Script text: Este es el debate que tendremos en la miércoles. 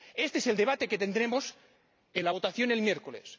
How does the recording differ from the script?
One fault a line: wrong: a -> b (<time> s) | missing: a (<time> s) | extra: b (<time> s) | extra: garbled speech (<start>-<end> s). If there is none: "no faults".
extra: votación el (2.3 s)